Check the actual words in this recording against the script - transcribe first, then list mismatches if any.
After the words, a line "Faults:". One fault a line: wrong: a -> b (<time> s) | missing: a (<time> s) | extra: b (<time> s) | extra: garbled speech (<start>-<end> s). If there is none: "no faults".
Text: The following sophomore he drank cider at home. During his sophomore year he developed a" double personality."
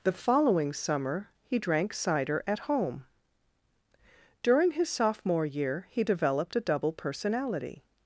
The following summer he drank cider at home. During his sophomore year he developed a" double personality."
Faults:
wrong: sophomore -> summer (0.7 s)